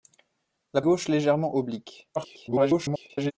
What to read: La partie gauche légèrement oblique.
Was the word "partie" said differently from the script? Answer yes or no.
yes